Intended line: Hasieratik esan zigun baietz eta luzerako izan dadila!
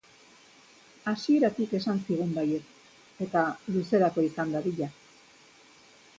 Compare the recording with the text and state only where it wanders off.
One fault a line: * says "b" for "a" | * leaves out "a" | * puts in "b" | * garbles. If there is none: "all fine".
all fine